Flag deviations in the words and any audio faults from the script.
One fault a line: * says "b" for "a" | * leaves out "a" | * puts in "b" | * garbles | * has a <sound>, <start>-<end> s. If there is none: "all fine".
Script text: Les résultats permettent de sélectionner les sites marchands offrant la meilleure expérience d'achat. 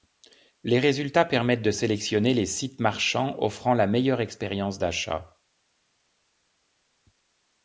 all fine